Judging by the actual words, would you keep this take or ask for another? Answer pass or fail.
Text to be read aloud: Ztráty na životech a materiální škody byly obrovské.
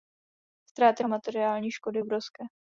fail